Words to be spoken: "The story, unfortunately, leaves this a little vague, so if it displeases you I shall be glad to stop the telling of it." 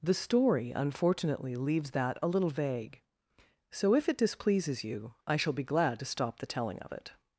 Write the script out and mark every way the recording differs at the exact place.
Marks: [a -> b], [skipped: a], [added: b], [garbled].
"The story, unfortunately, leaves [this -> that] a little vague, so if it displeases you I shall be glad to stop the telling of it."